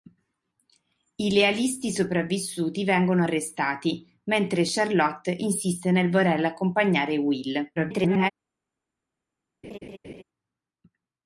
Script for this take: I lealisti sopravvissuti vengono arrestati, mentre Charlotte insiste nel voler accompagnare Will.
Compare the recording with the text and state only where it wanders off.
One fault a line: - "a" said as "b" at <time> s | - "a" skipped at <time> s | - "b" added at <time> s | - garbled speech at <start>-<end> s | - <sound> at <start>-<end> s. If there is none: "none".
- garbled speech at 7.8-8.3 s
- laugh at 9.6-10.2 s